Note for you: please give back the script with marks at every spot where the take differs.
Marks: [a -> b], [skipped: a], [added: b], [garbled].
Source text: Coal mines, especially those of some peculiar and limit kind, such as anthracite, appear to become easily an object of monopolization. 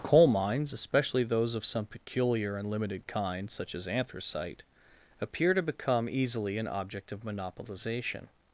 Coal mines, especially those of some peculiar and [limit -> limited] kind, such as anthracite, appear to become easily an object of monopolization.